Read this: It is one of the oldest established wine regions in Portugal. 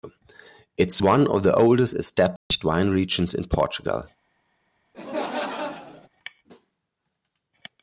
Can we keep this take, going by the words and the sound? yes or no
no